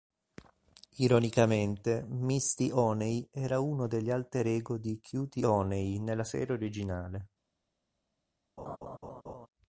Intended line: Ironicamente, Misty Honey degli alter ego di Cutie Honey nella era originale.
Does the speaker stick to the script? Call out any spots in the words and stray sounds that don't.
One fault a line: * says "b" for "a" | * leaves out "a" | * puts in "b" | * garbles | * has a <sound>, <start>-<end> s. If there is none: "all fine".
* puts in "era uno"
* says "serie" for "era"
* has a laugh, 8.6-9.5 s